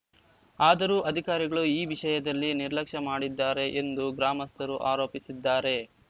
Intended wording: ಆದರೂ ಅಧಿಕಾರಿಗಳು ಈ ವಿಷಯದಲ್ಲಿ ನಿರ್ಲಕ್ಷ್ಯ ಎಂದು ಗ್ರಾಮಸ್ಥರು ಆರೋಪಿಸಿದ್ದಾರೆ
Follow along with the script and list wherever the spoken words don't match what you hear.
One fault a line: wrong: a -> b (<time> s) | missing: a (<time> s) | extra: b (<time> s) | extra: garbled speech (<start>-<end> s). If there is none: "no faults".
extra: ಮಾಡಿದ್ದಾರೆ (3.1 s)